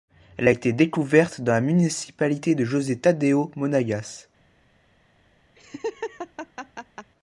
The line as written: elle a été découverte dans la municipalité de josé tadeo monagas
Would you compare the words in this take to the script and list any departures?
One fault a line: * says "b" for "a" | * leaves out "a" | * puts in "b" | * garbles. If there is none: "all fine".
all fine